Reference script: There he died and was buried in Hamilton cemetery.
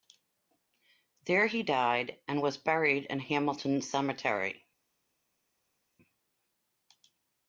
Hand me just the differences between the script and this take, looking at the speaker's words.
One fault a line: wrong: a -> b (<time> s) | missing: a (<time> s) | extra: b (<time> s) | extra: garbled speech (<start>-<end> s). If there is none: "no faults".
no faults